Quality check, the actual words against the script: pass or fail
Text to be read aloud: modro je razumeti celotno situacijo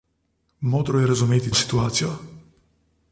fail